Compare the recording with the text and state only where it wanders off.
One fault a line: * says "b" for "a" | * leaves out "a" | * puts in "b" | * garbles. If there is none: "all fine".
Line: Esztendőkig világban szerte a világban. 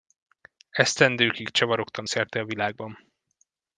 * says "csavarogtam" for "világban"